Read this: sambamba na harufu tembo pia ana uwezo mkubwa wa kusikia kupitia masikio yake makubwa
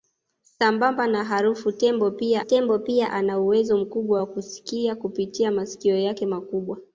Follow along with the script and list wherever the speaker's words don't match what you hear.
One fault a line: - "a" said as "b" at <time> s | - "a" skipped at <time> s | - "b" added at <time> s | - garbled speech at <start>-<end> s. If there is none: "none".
- "tembo pia" added at 2.4 s